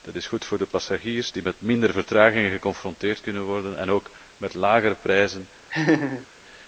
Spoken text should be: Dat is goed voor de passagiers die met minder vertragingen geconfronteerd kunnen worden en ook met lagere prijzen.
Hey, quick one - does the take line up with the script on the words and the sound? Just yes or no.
no